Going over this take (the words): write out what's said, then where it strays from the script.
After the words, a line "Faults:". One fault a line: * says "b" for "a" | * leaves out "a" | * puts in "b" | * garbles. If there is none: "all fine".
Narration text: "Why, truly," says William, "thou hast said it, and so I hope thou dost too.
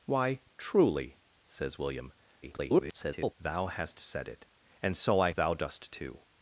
"Why, truly," says William, [garbled] "thou hast said it, and so I thou dost too.
Faults:
* garbles
* leaves out "hope"